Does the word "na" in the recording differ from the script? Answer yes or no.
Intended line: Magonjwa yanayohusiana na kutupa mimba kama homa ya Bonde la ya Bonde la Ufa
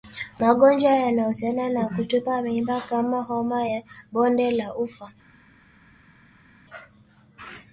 no